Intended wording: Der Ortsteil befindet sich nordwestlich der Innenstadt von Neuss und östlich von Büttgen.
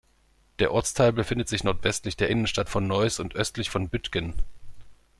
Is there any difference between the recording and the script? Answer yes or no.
no